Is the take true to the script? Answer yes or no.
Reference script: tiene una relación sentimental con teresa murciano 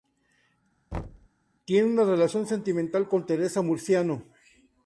yes